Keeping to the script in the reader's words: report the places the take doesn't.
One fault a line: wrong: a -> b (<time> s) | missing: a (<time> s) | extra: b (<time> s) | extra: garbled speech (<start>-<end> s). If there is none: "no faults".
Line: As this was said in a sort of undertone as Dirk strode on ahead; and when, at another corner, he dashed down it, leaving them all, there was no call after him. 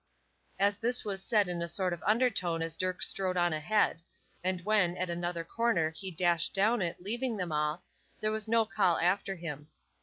no faults